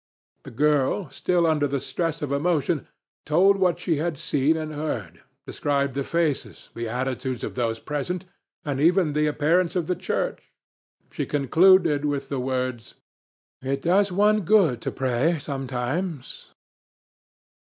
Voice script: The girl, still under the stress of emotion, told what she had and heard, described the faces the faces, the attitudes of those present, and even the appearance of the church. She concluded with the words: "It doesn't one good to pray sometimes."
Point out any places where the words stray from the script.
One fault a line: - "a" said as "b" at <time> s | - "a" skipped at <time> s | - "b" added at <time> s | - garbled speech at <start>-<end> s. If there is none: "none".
- "seen" added at 4.2 s
- "faces the" skipped at 6.9 s
- "doesn't" said as "does" at 13.8 s